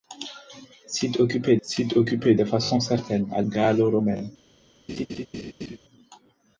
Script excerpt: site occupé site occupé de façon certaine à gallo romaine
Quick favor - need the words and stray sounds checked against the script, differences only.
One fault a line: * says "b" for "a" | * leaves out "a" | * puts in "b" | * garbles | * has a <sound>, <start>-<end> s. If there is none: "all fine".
* has a laugh, 4.9-5.8 s